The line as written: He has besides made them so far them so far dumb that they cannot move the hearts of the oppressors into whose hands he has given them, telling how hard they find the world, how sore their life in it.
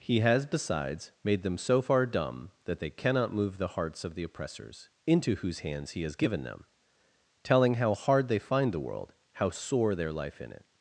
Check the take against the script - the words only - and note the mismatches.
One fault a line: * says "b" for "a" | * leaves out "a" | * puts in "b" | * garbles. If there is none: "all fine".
* leaves out "them so far"